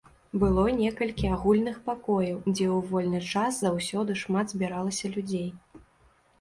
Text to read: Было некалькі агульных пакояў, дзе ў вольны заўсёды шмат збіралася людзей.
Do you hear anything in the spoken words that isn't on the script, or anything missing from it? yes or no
yes